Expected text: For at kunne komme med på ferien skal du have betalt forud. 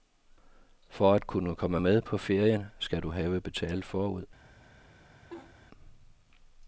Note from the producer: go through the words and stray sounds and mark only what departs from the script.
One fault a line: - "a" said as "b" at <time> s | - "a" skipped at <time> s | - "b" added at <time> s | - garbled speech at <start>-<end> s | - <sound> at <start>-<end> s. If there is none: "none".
- laugh at 5.3-5.5 s